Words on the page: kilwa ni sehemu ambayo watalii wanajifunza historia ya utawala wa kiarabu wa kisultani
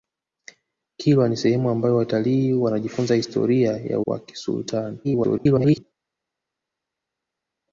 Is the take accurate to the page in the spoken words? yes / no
no